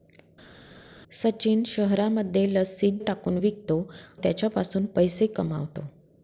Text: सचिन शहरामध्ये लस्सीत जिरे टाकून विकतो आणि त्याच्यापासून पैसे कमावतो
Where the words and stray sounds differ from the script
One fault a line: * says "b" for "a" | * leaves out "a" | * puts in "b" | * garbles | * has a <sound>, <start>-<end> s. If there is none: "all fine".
* leaves out "जिरे"
* leaves out "आणि"